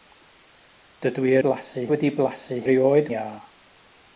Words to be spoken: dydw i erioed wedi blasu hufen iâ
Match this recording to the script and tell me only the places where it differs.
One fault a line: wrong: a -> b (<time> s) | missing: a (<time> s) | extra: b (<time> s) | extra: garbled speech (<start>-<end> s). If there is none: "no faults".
wrong: erioed -> blasu (1.5 s)
wrong: hufen -> erioed (2.6 s)